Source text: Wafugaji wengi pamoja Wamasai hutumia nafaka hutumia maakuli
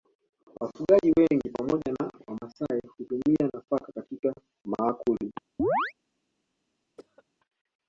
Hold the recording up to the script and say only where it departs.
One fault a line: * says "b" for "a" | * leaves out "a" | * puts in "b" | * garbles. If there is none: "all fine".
* puts in "na"
* says "katika" for "hutumia"